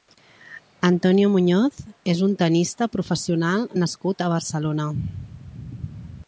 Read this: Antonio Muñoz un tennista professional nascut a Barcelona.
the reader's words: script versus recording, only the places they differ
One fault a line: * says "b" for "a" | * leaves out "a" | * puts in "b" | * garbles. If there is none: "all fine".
* puts in "és"